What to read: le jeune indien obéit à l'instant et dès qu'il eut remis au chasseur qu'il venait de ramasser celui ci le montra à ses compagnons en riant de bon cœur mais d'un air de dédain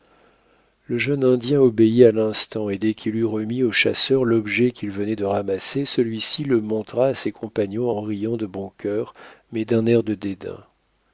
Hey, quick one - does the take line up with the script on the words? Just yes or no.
no